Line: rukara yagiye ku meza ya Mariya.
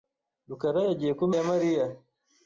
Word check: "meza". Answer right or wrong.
wrong